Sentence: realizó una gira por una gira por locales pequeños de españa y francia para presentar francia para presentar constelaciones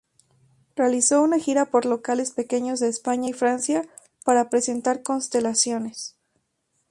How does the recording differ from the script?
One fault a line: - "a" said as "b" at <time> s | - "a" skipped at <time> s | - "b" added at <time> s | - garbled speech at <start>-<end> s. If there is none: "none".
- "una gira por" skipped at 1.9 s
- "francia para presentar" skipped at 5.0 s